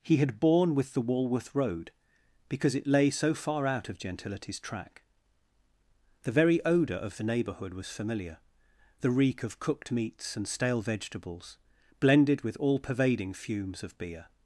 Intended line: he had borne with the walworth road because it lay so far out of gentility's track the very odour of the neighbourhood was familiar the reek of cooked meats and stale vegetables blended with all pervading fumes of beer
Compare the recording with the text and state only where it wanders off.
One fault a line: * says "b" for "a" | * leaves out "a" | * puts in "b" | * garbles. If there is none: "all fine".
all fine